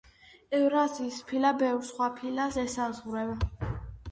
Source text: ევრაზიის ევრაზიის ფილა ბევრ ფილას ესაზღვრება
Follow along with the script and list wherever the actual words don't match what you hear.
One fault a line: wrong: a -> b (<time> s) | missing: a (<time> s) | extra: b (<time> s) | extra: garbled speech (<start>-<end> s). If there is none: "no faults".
missing: ევრაზიის (1.2 s)
extra: სხვა (1.9 s)